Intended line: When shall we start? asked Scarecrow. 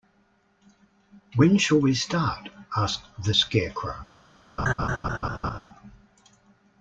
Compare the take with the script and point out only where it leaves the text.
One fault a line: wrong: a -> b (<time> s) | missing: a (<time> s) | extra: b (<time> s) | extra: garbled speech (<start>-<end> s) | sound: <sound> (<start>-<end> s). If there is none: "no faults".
extra: the (3.2 s)
sound: laugh (4.6-5.6 s)